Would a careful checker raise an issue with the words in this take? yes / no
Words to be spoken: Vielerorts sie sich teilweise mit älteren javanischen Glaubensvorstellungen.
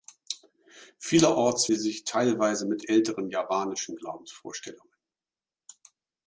no